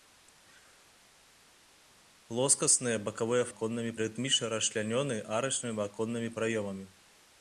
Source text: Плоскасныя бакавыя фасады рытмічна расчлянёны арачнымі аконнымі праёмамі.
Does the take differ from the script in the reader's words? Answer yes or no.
yes